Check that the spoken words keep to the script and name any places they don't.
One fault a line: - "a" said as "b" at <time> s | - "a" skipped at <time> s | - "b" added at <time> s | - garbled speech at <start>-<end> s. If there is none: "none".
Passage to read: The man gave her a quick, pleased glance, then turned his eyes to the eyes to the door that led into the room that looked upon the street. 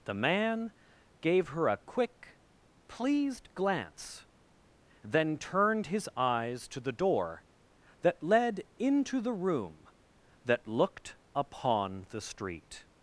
- "eyes to the" skipped at 6.9 s